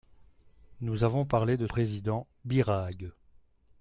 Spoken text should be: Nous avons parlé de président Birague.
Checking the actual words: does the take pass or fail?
pass